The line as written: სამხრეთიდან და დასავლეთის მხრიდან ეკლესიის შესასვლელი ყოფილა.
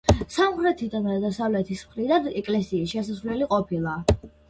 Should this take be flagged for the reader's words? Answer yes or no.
no